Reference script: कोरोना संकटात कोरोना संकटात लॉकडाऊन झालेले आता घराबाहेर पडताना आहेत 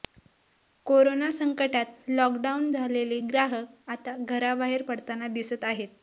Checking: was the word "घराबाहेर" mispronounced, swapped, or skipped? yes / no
no